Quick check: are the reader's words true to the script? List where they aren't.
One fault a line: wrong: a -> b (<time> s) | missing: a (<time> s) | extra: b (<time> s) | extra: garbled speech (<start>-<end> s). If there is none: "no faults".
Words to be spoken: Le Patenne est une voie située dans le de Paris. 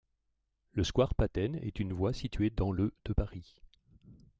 extra: square (0.8 s)